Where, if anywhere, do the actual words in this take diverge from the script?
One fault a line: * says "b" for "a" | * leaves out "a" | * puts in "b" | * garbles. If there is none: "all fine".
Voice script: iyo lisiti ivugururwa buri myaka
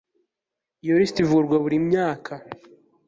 all fine